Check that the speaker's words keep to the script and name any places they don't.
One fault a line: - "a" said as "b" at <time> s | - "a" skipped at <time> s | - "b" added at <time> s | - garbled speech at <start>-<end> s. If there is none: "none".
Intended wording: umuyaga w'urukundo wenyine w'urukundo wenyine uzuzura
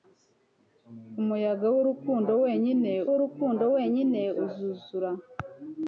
none